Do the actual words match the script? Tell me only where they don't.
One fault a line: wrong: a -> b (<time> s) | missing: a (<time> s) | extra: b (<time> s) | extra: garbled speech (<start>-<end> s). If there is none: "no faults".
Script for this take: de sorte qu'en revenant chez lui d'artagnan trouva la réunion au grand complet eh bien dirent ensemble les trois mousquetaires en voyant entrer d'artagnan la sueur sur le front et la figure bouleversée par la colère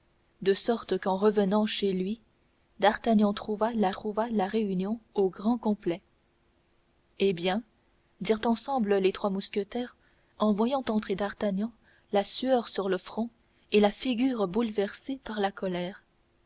extra: trouva la (3.9 s)